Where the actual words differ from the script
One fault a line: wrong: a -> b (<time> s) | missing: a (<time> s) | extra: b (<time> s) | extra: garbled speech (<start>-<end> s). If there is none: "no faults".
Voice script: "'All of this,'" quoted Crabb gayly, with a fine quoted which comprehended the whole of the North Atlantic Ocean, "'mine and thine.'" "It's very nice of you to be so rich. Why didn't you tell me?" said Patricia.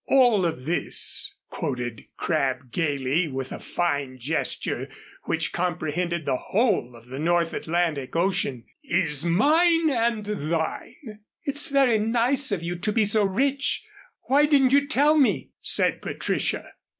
wrong: quoted -> gesture (4.2 s)
extra: is (8.8 s)